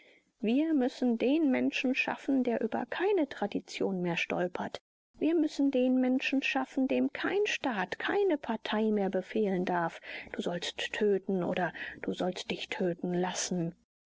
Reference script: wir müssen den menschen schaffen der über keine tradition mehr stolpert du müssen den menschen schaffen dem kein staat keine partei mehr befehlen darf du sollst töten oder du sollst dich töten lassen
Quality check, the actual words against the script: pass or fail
fail